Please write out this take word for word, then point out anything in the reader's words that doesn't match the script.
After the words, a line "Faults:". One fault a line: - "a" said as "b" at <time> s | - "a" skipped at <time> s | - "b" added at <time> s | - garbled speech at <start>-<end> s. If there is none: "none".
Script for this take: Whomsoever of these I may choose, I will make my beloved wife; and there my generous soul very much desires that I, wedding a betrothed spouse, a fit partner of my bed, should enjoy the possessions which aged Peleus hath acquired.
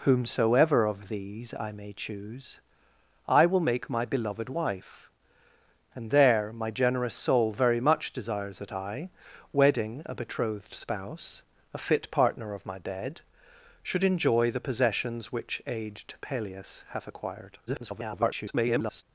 Whomsoever of these I may choose, I will make my beloved wife; and there my generous soul very much desires that I, wedding a betrothed spouse, a fit partner of my bed, should enjoy the possessions which aged Peleus hath acquired. [garbled]
Faults:
- garbled speech at 17.7-19.0 s